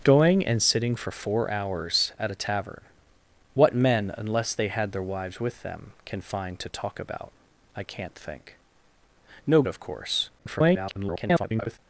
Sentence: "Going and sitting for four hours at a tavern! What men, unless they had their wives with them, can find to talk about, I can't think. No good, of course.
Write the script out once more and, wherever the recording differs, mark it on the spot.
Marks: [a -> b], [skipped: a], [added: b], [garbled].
"Going and sitting for four hours at a tavern! What men, unless they had their wives with them, can find to talk about, I can't think. No [skipped: good,] of course. [garbled]